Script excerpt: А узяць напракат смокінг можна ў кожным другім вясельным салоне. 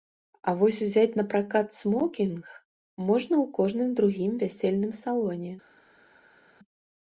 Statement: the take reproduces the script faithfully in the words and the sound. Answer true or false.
false